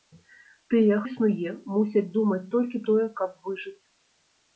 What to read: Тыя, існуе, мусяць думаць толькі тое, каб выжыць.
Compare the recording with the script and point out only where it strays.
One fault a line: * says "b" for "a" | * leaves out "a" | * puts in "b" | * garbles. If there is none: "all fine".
all fine